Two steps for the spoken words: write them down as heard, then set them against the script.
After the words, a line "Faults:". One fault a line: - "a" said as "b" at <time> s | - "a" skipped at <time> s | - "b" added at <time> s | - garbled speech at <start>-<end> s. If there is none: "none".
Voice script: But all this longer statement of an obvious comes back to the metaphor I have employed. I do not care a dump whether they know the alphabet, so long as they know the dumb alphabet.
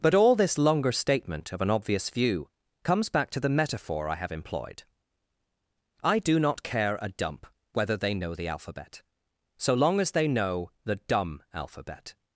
But all this longer statement of an obvious view comes back to the metaphor I have employed. I do not care a dump whether they know the alphabet, so long as they know the dumb alphabet.
Faults:
- "view" added at 2.1 s